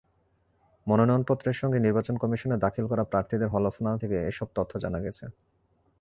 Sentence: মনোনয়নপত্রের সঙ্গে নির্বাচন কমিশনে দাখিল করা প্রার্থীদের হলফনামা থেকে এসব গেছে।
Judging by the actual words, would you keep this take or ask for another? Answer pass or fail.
fail